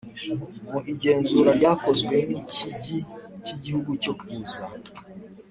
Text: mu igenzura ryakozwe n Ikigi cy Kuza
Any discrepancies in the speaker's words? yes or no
yes